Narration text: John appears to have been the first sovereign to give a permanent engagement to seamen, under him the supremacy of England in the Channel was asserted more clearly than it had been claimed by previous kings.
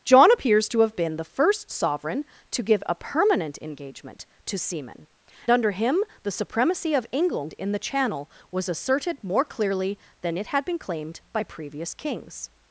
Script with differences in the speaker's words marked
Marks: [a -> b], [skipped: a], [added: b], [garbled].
John appears to have been the first sovereign to give a permanent engagement to seamen, under him the supremacy of England in the Channel was asserted more clearly than it had been claimed by previous kings.